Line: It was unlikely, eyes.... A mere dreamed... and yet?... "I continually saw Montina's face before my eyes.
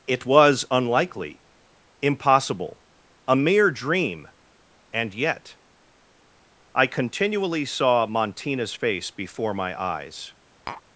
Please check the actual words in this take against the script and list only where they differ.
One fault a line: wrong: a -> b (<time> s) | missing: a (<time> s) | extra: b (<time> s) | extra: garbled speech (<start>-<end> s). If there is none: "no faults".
wrong: eyes -> impossible (2.0 s)
wrong: dreamed -> dream (3.7 s)